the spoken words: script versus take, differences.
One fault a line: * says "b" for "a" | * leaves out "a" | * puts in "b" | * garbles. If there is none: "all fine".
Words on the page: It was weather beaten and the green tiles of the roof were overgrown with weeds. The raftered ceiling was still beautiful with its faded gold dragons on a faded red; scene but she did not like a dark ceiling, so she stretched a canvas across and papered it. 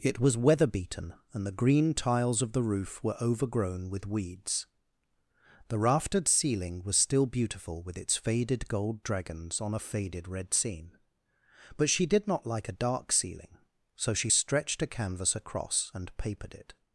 all fine